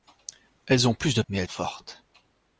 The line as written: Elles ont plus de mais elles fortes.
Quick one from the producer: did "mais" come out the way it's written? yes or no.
yes